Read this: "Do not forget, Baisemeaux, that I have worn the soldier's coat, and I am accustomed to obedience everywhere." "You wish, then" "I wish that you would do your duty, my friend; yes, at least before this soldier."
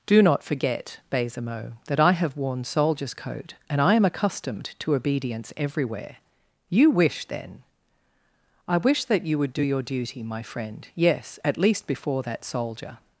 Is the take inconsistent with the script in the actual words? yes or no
yes